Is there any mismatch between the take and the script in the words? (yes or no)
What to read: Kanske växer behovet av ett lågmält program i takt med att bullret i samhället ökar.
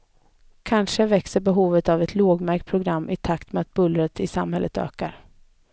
no